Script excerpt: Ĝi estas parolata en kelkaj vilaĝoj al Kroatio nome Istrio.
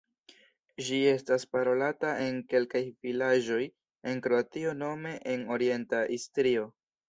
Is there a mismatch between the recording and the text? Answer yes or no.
yes